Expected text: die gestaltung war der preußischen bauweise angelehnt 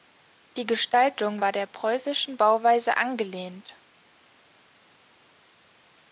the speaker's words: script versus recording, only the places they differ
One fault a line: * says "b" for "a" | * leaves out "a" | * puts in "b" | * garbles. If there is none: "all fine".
all fine